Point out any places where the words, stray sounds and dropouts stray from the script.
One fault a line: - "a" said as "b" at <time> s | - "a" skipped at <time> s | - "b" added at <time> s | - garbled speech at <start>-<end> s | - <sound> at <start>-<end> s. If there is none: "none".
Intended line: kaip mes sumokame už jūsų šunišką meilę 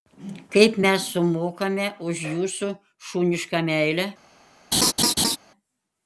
- laugh at 4.7-5.4 s